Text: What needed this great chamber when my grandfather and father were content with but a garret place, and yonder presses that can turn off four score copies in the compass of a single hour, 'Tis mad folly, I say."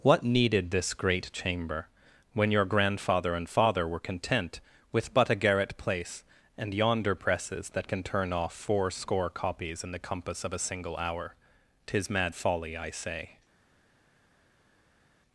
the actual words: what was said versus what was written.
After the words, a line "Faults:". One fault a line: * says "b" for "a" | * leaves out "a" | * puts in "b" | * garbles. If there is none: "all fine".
What needed this great chamber when your grandfather and father were content with but a garret place, and yonder presses that can turn off four score copies in the compass of a single hour, 'Tis mad folly, I say."
Faults:
* says "your" for "my"